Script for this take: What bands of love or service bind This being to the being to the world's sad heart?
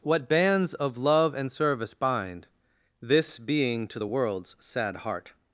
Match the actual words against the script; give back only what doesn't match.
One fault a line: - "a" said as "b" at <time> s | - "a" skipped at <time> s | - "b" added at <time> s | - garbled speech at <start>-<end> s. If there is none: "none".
- "or" said as "and" at 1.4 s
- "being to the" skipped at 4.1 s